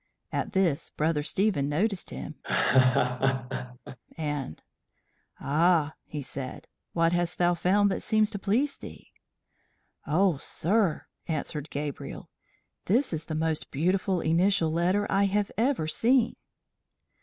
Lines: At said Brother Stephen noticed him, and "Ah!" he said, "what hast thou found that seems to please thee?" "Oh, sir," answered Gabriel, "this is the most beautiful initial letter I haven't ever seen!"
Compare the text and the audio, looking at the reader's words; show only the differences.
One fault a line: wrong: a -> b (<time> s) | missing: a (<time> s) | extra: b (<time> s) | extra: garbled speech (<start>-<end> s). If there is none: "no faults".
wrong: said -> this (0.5 s)
wrong: haven't -> have (15.3 s)